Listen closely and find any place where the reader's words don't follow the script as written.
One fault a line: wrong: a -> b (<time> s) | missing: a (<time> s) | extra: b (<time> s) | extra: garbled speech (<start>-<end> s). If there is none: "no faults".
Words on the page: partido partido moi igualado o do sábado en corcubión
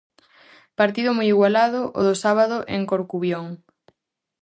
missing: partido (1.1 s)